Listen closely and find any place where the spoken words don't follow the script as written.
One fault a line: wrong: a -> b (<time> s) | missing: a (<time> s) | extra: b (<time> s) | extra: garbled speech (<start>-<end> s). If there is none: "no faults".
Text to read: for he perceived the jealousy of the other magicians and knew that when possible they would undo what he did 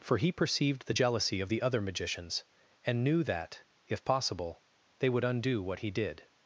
wrong: when -> if (3.9 s)